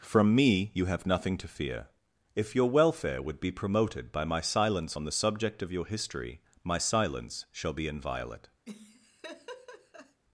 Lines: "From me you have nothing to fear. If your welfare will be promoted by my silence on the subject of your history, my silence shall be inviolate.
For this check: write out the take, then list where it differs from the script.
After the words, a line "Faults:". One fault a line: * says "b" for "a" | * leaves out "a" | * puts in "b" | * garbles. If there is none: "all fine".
"From me you have nothing to fear. If your welfare would be promoted by my silence on the subject of your history, my silence shall be inviolate.
Faults:
* says "would" for "will"